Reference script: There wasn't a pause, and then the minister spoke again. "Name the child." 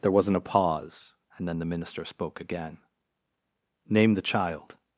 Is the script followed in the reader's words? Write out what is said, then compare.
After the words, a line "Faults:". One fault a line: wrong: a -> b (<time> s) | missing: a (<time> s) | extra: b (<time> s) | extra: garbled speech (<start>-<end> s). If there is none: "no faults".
There wasn't a pause, and then the minister spoke again. "Name the child."
Faults:
no faults